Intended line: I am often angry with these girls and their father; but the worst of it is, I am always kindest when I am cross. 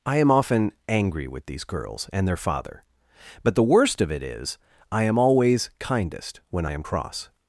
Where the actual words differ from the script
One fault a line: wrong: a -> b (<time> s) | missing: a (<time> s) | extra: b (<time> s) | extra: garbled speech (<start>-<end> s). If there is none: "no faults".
no faults